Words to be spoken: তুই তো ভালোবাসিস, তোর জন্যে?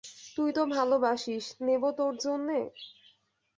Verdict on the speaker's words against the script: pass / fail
fail